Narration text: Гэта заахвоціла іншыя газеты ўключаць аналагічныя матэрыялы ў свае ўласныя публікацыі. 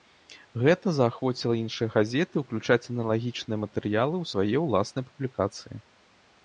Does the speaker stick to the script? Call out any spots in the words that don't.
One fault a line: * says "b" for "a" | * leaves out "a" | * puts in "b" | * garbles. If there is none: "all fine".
all fine